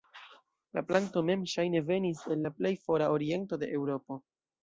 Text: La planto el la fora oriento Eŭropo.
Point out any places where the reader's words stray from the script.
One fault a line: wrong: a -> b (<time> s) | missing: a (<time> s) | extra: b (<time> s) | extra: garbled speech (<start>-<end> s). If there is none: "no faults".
extra: mem ŝajne venis (1.3 s)
extra: plej (2.6 s)
extra: de (3.6 s)